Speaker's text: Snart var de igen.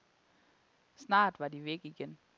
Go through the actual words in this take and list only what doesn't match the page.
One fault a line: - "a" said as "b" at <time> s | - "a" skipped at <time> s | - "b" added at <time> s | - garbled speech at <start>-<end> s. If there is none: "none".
- "væk" added at 1.6 s